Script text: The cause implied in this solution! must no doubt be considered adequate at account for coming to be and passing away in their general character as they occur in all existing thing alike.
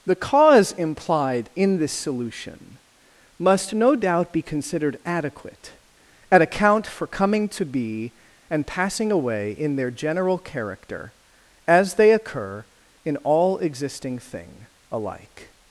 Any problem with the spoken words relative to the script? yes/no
no